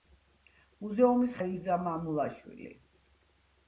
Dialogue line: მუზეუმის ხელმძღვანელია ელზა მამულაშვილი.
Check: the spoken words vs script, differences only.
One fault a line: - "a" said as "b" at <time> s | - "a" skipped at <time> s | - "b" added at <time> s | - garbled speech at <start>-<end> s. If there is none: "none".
- "ხელმძღვანელია" skipped at 1.4 s